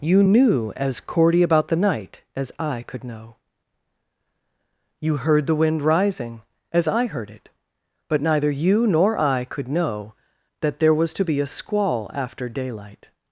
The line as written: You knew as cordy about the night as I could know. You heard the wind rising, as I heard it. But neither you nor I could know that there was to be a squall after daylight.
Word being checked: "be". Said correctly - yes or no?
yes